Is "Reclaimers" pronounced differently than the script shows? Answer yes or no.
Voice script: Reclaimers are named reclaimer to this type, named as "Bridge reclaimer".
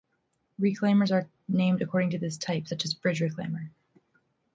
no